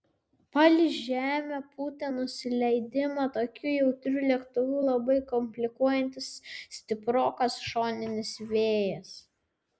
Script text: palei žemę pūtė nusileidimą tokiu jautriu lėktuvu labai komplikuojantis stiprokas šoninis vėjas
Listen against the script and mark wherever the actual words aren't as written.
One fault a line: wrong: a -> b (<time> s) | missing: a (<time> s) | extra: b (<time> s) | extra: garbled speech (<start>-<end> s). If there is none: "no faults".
no faults